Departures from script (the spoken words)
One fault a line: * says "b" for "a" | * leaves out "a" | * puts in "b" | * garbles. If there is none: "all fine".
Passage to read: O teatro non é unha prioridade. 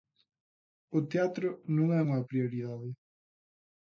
all fine